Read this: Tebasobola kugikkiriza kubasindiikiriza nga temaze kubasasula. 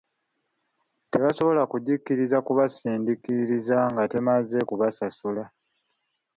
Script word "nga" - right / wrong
right